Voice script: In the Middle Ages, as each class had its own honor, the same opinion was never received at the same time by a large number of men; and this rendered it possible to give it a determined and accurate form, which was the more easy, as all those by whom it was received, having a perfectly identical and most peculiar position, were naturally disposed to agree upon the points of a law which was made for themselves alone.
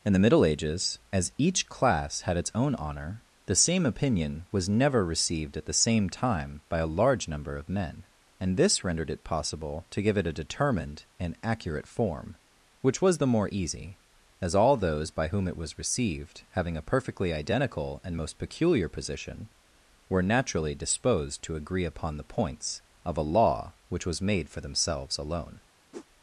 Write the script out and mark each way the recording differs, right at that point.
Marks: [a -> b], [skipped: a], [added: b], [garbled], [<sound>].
In the Middle Ages, as each class had its own honor, the same opinion was never received at the same time by a large number of men; and this rendered it possible to give it a determined and accurate form, which was the more easy, as all those by whom it was received, having a perfectly identical and most peculiar position, were naturally disposed to agree upon the points of a law which was made for themselves alone. [whoosh]